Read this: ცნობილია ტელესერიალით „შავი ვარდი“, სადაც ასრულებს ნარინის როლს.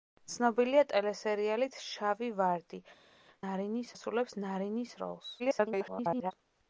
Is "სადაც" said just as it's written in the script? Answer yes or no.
no